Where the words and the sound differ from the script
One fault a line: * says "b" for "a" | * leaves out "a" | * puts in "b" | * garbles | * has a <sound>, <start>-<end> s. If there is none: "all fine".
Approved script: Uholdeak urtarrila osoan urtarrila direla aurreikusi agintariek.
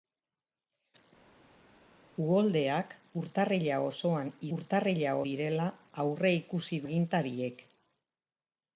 all fine